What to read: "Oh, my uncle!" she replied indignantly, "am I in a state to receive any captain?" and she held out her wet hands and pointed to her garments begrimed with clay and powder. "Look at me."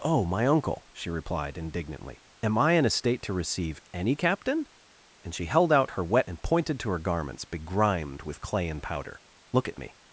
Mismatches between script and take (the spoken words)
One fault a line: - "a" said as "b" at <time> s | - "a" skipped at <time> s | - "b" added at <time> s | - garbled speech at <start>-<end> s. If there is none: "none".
- "hands" skipped at 6.3 s